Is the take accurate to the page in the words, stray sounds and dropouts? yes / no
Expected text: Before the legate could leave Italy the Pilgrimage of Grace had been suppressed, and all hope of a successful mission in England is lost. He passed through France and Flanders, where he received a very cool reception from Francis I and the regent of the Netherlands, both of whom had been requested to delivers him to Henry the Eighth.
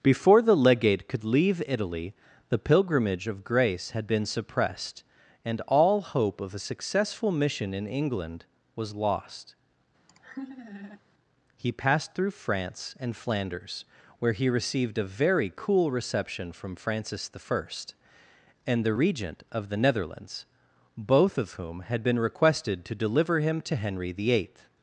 no